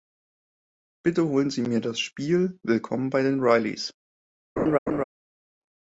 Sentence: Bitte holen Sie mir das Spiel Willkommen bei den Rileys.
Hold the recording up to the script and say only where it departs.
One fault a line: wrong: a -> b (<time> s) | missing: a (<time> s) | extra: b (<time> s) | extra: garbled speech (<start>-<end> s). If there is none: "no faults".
no faults